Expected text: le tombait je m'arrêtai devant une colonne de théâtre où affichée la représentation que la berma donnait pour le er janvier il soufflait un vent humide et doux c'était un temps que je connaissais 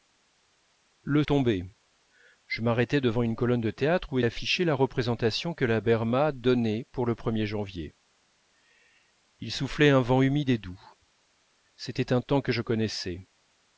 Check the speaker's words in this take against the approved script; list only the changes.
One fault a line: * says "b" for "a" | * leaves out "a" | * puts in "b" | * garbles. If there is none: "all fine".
all fine